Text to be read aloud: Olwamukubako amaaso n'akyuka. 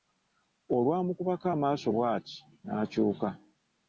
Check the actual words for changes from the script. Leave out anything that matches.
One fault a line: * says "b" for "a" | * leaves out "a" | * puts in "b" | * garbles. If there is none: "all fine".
* puts in "bw'ati"